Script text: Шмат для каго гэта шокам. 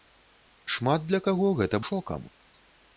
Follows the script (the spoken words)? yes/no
yes